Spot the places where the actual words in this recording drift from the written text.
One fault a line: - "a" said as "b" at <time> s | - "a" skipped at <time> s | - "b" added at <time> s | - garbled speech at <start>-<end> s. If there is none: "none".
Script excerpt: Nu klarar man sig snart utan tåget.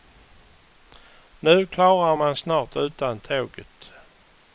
- "sig" skipped at 2.4 s